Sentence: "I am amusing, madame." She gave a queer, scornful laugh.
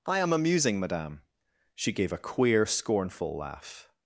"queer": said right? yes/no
yes